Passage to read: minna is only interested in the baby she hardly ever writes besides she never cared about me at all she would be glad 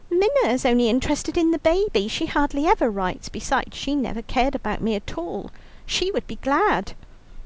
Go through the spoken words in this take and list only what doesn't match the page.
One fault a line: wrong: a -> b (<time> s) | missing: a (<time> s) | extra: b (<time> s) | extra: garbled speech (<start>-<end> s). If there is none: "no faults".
no faults